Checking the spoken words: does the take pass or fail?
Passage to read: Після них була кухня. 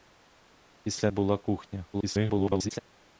fail